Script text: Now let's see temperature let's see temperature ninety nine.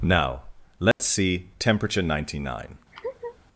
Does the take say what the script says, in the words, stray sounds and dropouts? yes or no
no